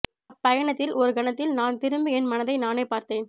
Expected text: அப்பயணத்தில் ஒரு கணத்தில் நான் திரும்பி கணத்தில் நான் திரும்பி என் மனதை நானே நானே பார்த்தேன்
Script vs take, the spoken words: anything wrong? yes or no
yes